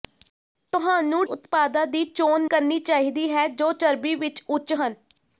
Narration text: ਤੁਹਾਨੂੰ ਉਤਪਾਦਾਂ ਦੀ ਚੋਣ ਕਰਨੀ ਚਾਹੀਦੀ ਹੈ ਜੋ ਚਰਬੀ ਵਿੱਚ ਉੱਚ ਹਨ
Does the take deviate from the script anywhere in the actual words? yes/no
no